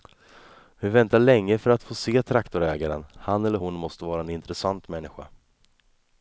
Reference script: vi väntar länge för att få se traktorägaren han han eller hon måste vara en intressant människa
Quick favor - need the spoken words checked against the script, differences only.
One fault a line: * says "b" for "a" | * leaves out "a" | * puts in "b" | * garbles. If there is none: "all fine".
* leaves out "han"